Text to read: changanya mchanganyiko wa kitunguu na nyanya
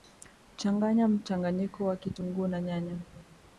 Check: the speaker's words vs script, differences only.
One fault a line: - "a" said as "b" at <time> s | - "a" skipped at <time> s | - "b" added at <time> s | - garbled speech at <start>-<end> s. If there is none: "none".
none